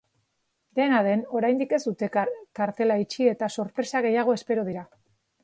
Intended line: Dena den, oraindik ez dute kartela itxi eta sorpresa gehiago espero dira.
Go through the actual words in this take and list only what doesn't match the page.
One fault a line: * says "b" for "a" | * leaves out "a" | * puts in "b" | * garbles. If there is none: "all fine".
all fine